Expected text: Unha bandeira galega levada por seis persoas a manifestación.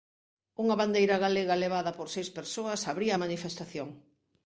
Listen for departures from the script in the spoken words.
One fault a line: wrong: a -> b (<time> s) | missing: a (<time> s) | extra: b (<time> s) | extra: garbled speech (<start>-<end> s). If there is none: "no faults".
extra: abría (2.9 s)